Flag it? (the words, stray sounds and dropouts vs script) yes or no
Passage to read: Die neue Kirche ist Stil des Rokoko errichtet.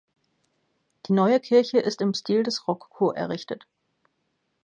yes